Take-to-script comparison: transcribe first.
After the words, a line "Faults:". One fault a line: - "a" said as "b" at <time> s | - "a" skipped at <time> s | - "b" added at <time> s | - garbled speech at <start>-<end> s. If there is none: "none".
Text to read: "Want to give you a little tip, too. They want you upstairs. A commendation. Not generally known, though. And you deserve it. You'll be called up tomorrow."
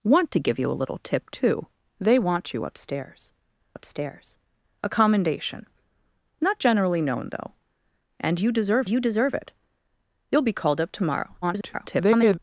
"Want to give you a little tip, too. They want you upstairs upstairs. A commendation. Not generally known, though. And you deserve you deserve it. You'll be called up tomorrow." [garbled]
Faults:
- "upstairs" added at 3.7 s
- "you deserve" added at 8.9 s
- garbled speech at 11.4-12.4 s